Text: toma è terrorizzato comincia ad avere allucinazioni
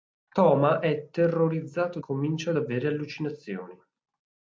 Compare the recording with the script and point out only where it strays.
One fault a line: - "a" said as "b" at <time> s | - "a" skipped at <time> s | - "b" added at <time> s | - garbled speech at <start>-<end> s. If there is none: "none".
none